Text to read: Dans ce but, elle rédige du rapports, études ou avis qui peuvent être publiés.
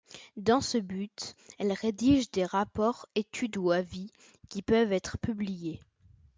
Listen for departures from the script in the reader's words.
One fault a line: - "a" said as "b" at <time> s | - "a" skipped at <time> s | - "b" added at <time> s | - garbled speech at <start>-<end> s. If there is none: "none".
- "du" said as "des" at 2.3 s